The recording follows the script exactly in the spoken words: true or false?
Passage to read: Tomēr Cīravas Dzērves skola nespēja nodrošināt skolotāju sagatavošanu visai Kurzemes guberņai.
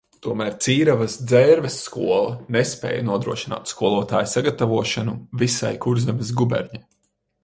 true